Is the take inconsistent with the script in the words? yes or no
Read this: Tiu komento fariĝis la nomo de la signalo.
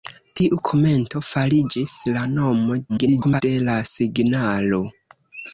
yes